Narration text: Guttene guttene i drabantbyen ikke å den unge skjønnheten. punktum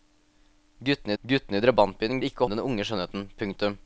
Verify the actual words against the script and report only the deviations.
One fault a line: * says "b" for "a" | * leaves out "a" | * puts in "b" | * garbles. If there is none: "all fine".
all fine